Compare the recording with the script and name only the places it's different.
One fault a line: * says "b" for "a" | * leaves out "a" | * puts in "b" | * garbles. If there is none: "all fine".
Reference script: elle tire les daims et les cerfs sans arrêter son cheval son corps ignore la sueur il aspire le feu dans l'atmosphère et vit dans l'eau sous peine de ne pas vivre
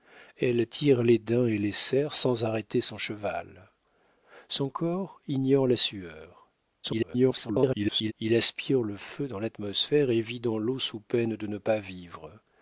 * garbles